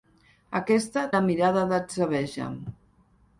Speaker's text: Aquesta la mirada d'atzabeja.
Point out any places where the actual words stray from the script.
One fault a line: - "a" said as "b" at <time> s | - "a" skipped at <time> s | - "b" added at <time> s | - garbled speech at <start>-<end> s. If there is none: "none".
none